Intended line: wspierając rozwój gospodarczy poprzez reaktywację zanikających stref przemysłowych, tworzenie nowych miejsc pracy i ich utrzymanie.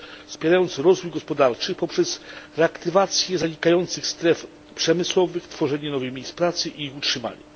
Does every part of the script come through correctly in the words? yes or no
yes